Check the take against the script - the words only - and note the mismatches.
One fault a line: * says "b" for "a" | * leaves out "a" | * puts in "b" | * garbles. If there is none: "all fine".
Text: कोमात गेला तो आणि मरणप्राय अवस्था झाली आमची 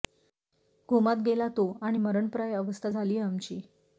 all fine